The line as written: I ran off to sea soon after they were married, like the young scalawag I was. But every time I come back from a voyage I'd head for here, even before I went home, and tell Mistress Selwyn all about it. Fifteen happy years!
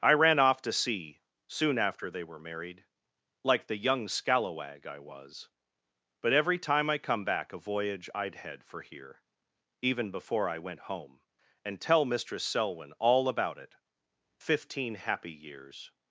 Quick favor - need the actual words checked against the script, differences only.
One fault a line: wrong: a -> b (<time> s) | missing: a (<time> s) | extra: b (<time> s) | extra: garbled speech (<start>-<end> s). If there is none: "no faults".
missing: from (7.5 s)